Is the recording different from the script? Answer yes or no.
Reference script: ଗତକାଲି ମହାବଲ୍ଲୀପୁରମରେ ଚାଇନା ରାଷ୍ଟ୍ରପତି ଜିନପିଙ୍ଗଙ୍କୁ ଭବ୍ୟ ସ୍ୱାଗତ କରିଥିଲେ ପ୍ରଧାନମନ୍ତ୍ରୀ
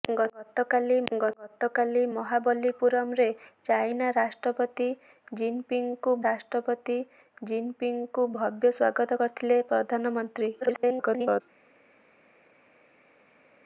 yes